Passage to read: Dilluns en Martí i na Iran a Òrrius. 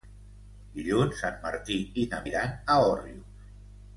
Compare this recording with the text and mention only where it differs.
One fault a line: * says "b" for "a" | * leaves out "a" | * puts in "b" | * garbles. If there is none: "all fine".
all fine